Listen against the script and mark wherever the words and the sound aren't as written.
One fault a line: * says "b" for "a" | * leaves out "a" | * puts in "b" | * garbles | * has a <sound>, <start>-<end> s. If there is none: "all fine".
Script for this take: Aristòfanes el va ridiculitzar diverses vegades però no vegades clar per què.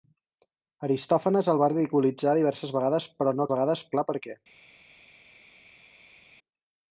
all fine